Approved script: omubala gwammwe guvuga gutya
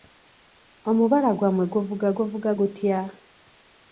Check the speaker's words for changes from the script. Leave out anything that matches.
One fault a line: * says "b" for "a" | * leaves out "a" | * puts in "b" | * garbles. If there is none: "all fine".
* puts in "guvuga"